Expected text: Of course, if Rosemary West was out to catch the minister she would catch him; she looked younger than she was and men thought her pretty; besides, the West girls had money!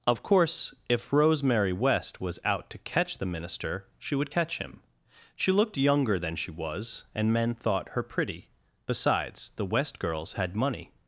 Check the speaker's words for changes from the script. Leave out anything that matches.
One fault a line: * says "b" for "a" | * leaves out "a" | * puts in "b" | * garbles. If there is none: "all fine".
all fine